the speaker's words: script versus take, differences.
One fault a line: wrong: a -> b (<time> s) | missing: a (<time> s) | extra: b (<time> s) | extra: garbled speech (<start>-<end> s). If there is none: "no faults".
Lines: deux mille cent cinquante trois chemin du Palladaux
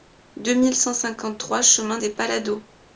wrong: du -> des (1.9 s)